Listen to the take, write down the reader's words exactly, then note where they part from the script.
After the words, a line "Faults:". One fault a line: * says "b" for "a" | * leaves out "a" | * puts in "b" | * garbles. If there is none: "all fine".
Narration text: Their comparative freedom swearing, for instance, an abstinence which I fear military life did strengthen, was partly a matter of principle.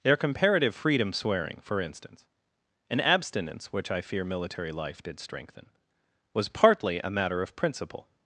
Their comparative freedom swearing, for instance, an abstinence which I fear military life did strengthen, was partly a matter of principle.
Faults:
all fine